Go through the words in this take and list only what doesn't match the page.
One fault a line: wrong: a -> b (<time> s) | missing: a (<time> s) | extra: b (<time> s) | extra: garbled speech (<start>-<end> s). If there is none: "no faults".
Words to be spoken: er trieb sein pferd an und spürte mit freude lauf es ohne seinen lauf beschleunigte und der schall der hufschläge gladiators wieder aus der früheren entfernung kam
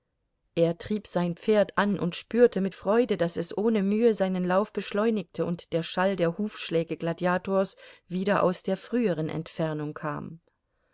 wrong: lauf -> daß (3.2 s)
extra: mühe (3.8 s)